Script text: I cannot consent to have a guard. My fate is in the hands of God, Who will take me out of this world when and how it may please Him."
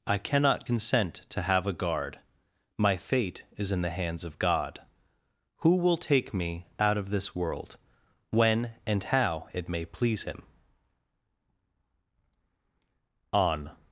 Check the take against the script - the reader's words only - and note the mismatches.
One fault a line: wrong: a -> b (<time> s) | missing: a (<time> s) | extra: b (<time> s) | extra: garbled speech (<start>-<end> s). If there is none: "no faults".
extra: On (13.3 s)